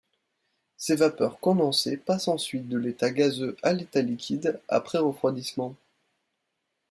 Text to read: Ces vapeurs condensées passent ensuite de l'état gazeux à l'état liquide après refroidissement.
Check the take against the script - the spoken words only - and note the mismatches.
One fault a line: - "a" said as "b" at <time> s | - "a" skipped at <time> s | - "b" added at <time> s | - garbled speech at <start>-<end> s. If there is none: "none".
none